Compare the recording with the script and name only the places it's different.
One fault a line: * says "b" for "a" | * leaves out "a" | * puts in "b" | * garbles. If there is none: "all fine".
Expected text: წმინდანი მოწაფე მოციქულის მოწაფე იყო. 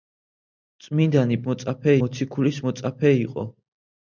all fine